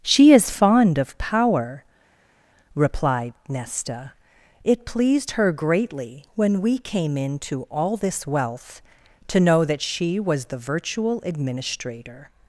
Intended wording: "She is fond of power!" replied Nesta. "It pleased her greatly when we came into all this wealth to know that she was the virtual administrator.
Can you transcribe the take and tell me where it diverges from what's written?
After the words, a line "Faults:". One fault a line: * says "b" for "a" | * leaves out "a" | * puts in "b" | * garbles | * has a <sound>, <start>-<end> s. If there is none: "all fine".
"She is fond of power!" replied Nesta. "It pleased her greatly when we came into all this wealth to know that she was the virtual administrator.
Faults:
all fine